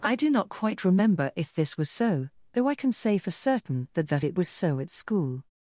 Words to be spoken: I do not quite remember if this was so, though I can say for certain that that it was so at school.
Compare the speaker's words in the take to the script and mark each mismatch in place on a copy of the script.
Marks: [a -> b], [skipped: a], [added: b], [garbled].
I do not quite remember if this was so, though I can say for certain that that it was so at school.